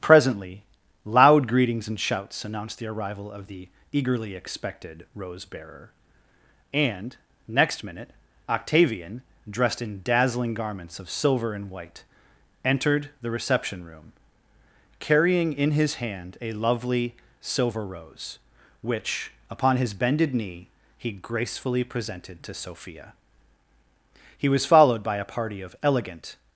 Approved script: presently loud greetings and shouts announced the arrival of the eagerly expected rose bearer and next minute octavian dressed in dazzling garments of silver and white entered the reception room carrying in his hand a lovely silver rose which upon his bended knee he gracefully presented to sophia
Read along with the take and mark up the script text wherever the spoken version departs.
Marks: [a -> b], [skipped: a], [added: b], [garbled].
presently loud greetings and shouts announced the arrival of the eagerly expected rose bearer and next minute octavian dressed in dazzling garments of silver and white entered the reception room carrying in his hand a lovely silver rose which upon his bended knee he gracefully presented to sophia [added: he was followed by a party of elegant]